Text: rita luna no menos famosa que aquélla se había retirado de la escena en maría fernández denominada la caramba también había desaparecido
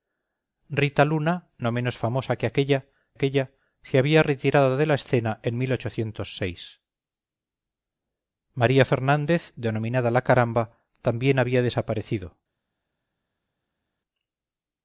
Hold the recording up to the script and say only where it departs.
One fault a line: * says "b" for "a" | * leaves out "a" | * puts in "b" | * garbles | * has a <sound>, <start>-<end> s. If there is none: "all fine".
* puts in "aquélla"